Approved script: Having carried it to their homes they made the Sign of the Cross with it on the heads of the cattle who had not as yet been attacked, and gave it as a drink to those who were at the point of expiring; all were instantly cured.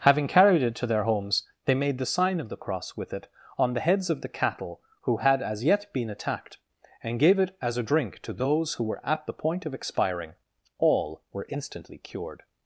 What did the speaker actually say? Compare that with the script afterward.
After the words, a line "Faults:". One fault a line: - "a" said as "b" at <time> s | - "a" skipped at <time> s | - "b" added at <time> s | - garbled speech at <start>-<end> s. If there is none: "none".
Having carried it to their homes they made the Sign of the Cross with it on the heads of the cattle who had as yet been attacked, and gave it as a drink to those who were at the point of expiring; all were instantly cured.
Faults:
- "not" skipped at 5.4 s